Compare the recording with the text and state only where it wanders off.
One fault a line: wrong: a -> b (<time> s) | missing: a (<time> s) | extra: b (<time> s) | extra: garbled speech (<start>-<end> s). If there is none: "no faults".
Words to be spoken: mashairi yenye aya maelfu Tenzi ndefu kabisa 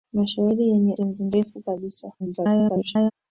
missing: aya maelfu (0.9 s)
extra: garbled speech (2.2-3.1 s)